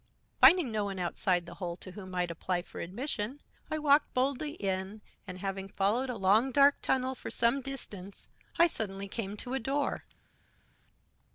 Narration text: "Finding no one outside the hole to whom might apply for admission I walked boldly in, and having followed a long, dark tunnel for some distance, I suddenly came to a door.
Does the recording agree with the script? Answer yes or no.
yes